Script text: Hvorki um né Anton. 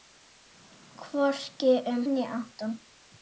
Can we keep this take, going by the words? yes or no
yes